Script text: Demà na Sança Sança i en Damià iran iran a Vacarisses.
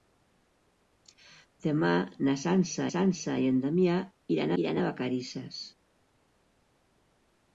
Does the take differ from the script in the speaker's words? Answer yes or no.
no